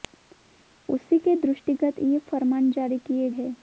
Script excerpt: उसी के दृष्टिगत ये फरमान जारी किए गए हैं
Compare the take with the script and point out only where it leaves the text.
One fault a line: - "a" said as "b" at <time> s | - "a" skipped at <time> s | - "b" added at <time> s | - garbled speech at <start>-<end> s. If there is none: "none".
- "गए" skipped at 3.3 s